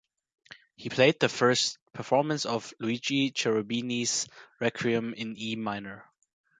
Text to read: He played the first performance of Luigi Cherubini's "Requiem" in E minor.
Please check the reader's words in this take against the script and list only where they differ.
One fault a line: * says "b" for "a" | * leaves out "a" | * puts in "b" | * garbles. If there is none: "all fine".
all fine